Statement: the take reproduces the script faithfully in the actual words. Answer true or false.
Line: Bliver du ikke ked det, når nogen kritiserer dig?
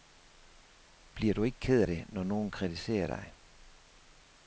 true